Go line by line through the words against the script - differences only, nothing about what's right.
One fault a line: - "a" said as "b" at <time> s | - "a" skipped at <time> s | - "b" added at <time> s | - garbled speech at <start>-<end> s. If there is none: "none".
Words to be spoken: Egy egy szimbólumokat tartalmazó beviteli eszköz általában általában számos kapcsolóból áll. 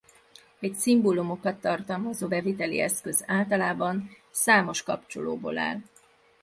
- "egy" skipped at 0.7 s
- "általában" skipped at 4.1 s